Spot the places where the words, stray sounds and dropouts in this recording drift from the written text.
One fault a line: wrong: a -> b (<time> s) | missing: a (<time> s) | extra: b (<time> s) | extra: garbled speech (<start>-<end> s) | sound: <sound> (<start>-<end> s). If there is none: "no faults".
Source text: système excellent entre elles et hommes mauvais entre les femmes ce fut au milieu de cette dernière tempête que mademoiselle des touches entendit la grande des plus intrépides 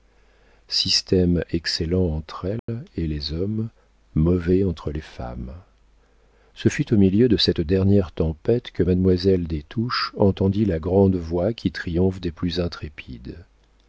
sound: dropout (2.6-2.7 s)
extra: les (3.0 s)
extra: voix qui triomphe (11.2 s)